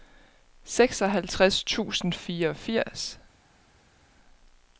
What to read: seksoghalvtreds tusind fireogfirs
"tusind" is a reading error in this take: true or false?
false